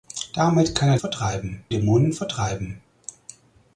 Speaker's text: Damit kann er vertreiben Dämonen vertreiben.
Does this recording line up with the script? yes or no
yes